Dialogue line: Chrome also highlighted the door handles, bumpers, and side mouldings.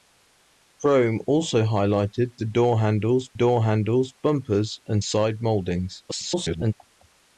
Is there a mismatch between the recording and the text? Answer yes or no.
yes